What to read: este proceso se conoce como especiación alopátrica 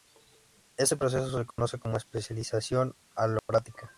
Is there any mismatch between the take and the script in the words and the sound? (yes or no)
yes